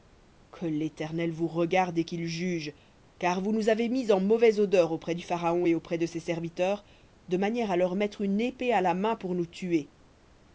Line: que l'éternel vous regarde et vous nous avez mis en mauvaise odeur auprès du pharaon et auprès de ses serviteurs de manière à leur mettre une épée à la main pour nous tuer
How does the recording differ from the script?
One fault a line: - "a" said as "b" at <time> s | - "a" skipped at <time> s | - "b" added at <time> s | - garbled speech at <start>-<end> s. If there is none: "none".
- "qu'il juge car" added at 2.0 s